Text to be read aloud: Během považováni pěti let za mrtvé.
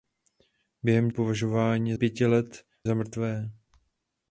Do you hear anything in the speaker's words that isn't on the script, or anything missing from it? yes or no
no